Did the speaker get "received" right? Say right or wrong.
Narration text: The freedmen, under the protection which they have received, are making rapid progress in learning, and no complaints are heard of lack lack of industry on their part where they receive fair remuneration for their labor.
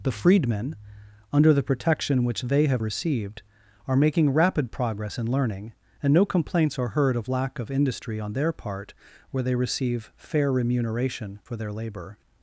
right